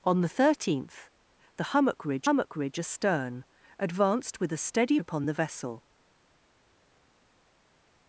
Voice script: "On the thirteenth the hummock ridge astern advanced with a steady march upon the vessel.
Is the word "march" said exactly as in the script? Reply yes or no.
no